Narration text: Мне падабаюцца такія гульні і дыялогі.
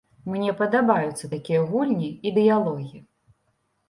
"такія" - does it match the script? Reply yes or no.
yes